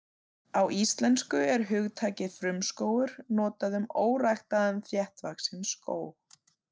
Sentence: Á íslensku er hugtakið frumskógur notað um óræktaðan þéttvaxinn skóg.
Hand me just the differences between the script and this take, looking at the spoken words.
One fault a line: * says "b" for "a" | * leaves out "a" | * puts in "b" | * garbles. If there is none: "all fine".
all fine